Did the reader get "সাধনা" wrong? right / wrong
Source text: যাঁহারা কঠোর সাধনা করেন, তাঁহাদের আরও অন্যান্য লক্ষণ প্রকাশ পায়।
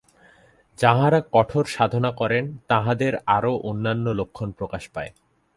right